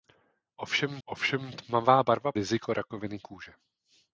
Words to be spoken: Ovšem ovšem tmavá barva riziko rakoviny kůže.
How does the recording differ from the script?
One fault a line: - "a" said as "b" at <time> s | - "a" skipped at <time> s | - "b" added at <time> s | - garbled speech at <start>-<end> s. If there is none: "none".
none